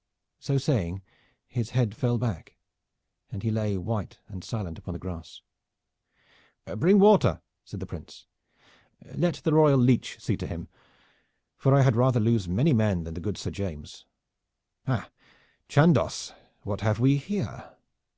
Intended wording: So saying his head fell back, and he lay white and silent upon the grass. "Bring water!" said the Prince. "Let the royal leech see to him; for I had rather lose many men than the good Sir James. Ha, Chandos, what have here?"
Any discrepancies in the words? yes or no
yes